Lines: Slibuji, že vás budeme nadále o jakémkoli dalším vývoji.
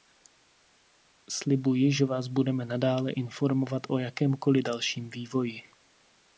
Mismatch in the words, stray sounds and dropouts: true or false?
true